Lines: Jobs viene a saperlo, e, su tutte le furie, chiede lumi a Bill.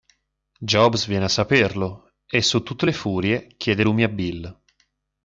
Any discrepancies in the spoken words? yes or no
no